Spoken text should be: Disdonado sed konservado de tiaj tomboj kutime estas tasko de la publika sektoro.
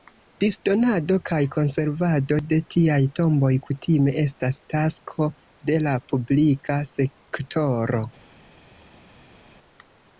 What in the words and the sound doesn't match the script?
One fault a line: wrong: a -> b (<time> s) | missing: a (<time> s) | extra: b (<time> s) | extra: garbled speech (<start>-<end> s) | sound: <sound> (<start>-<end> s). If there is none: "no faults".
wrong: sed -> kaj (1.3 s)